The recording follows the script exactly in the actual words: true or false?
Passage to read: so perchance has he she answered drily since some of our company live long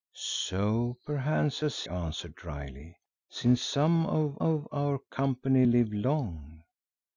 false